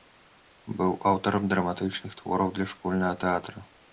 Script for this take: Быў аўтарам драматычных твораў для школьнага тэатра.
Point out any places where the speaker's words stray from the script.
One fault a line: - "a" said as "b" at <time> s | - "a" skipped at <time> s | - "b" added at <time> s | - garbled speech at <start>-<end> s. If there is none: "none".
none